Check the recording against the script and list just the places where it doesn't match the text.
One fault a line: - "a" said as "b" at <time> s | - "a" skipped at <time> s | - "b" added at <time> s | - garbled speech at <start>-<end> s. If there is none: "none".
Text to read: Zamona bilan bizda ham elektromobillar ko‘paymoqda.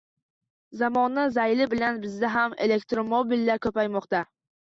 - "zayli" added at 1.4 s